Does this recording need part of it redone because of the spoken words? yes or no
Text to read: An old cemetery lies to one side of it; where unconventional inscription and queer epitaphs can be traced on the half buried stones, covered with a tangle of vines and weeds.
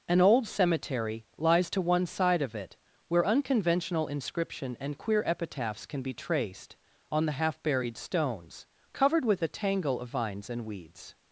no